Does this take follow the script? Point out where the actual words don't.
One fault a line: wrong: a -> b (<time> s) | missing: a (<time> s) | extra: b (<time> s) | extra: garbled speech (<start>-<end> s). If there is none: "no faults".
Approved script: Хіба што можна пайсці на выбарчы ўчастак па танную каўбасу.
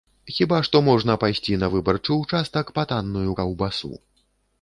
no faults